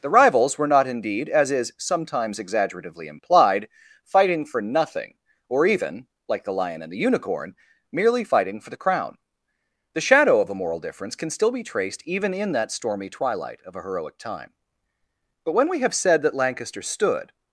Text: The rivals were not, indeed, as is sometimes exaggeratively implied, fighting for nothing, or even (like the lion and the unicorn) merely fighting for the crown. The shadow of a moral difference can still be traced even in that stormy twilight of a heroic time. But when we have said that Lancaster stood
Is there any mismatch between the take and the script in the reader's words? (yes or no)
no